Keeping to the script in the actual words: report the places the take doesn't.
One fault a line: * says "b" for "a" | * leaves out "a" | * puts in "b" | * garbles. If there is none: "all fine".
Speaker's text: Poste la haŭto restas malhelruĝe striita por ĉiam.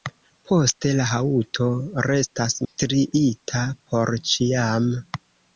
* leaves out "malhelruĝe"